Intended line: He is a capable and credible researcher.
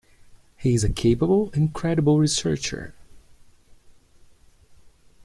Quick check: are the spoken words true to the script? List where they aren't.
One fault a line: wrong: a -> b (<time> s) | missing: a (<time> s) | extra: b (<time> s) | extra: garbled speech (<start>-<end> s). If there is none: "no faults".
no faults